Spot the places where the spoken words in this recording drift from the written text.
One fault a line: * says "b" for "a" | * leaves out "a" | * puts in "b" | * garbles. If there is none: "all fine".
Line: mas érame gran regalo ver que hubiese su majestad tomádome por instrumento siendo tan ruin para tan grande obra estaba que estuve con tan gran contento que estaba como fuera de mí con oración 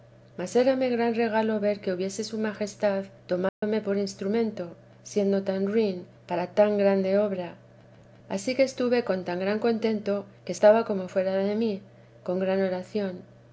* says "ansí" for "estaba"
* puts in "gran"